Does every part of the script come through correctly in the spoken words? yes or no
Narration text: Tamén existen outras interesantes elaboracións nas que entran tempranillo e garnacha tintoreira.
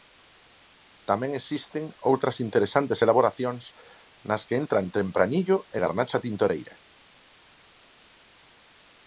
yes